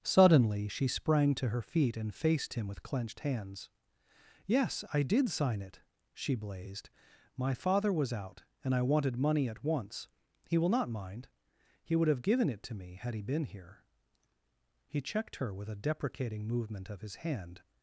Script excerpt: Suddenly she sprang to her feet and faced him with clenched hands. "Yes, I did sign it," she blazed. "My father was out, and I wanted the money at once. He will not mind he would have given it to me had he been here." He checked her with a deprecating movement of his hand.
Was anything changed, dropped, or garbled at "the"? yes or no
yes